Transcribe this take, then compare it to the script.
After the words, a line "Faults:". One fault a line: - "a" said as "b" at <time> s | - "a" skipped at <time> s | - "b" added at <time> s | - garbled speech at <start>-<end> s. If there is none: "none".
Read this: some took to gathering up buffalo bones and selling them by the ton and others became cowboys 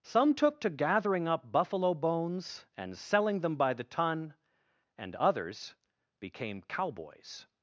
some took to gathering up buffalo bones and selling them by the ton and others became cowboys
Faults:
none